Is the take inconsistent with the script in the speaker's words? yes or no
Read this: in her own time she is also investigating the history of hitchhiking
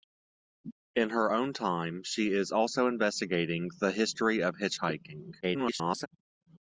yes